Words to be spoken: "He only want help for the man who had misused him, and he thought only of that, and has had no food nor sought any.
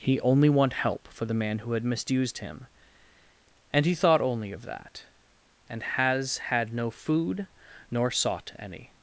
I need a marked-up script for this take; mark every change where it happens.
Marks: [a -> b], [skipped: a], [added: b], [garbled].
"He only want help for the man who had misused him, and he thought only of that, and has had no food nor sought any.